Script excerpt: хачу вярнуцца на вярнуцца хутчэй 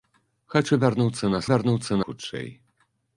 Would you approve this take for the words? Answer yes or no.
yes